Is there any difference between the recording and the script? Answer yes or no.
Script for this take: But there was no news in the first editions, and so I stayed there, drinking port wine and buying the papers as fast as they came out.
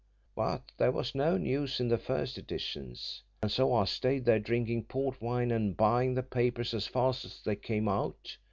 no